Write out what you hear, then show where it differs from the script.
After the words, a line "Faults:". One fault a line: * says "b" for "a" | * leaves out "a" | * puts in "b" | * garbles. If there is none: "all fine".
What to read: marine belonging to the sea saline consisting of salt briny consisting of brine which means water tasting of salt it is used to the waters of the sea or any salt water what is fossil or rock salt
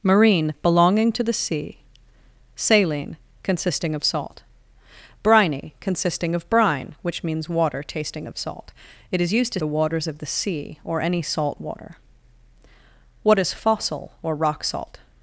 marine belonging to the sea saline consisting of salt briny consisting of brine which means water tasting of salt it is used to the waters of the sea or any salt water what is fossil or rock salt
Faults:
all fine